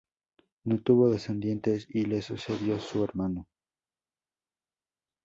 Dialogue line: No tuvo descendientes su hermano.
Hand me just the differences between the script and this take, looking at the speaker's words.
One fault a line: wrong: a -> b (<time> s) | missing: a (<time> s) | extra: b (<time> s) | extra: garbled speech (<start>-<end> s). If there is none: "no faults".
extra: y le sucedió (1.9 s)